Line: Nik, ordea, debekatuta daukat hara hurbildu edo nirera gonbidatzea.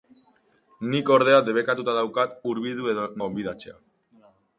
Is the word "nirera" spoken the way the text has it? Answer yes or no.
no